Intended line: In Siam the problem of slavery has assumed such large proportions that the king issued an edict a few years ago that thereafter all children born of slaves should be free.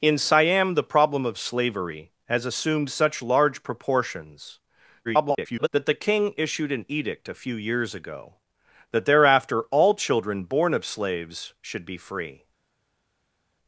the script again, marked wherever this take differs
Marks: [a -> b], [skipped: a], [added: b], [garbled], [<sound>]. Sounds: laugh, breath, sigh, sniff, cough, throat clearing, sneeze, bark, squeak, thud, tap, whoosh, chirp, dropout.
In Siam the problem of slavery has assumed such large proportions [garbled] that the king issued an edict a few years ago that thereafter all children born of slaves should be free.